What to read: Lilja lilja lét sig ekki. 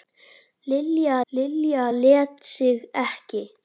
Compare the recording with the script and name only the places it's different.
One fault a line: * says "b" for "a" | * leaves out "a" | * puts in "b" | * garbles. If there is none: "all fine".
all fine